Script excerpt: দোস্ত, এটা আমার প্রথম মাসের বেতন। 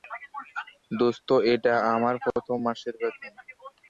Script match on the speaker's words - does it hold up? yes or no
yes